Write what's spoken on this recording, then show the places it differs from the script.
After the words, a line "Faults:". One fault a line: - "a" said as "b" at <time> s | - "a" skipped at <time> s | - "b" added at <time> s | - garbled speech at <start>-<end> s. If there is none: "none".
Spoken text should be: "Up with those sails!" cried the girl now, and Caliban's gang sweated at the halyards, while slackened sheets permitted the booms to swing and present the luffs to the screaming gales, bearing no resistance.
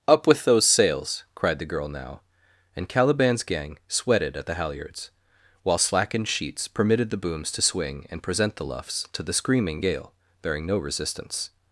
"Up with those sails!" cried the girl now, and Caliban's gang sweated at the halyards, while slackened sheets permitted the booms to swing and present the luffs to the screaming gale, bearing no resistance.
Faults:
- "gales" said as "gale" at 9.8 s